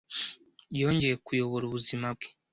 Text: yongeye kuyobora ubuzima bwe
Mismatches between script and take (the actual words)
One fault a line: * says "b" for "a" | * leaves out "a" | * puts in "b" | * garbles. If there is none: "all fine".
all fine